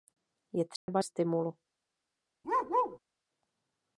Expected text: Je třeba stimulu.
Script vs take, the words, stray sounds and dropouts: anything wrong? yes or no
yes